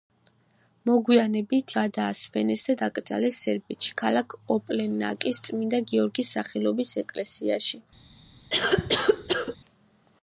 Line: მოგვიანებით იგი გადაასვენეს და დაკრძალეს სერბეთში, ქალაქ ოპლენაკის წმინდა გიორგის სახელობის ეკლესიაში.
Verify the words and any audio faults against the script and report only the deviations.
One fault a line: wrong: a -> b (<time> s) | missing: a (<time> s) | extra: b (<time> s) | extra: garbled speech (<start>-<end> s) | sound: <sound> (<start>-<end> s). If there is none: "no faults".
missing: იგი (1.8 s)
sound: cough (8.5-9.6 s)